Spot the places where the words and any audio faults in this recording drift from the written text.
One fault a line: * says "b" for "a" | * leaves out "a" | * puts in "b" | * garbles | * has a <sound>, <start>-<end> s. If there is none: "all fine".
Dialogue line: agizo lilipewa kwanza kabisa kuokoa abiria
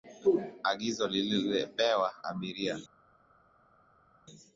* leaves out "kwanza kabisa kuokoa"